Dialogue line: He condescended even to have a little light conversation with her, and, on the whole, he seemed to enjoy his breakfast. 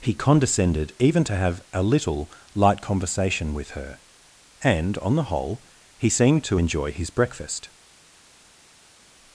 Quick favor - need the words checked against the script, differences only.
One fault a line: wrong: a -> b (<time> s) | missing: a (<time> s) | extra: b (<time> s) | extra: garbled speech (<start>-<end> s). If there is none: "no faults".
no faults